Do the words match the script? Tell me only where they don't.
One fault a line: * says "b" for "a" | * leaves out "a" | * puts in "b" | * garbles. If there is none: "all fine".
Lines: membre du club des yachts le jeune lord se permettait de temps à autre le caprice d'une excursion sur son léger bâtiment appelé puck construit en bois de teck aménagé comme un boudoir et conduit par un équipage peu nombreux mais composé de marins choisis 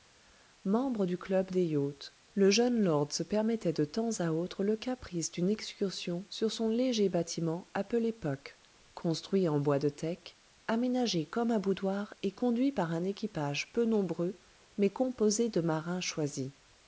all fine